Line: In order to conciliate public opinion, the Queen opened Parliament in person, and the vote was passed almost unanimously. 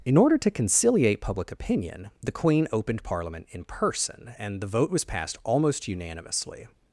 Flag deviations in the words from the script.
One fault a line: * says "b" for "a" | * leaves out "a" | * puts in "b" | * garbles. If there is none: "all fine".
all fine